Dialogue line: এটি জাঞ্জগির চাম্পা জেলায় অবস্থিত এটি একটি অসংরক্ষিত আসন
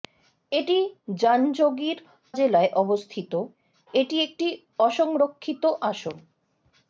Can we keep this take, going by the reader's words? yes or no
no